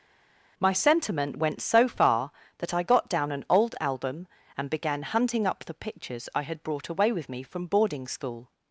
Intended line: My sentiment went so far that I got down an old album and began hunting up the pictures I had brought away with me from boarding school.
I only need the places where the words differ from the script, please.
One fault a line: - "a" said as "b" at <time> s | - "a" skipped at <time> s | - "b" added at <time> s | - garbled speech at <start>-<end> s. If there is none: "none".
none